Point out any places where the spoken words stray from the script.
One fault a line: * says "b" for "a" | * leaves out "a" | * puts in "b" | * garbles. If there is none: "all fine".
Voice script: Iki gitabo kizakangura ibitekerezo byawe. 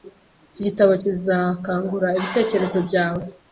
all fine